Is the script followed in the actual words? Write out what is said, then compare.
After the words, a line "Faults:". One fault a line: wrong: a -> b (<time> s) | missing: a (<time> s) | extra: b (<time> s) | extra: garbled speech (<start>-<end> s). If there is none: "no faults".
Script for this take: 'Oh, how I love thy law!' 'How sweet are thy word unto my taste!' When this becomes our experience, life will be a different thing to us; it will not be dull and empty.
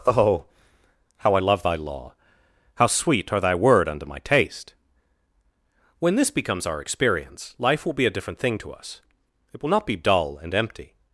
'Oh, how I love thy law!' 'How sweet are thy word unto my taste!' When this becomes our experience, life will be a different thing to us; it will not be dull and empty.
Faults:
no faults